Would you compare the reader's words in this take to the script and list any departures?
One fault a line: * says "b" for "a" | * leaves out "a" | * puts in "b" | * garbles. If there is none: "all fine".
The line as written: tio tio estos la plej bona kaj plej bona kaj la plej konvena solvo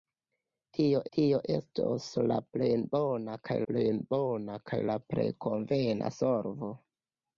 all fine